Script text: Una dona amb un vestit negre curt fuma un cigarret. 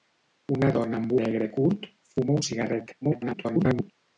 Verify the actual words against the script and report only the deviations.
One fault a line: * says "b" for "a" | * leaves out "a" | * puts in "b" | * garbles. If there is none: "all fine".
* leaves out "un vestit"
* garbles